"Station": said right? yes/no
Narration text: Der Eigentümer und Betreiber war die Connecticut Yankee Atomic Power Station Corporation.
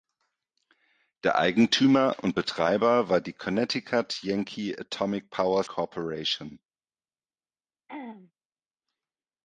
no